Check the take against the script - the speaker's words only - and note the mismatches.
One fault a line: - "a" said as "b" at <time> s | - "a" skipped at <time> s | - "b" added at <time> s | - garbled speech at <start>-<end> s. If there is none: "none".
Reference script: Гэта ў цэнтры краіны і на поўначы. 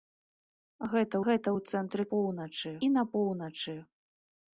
- "гэта" added at 1.3 s
- "краіны" said as "поўначы" at 2.1 s